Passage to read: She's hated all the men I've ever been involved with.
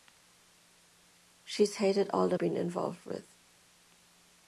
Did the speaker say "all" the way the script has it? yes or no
yes